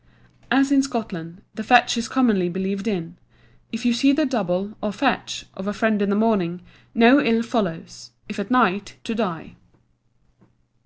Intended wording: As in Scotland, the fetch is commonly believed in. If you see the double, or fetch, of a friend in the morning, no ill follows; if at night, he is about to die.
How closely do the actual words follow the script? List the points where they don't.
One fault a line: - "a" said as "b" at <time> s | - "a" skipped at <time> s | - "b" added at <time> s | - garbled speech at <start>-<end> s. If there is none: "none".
- "he is about" skipped at 9.0 s